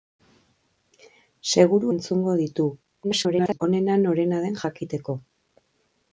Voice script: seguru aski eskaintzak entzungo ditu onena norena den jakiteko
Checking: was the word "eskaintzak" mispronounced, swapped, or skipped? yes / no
yes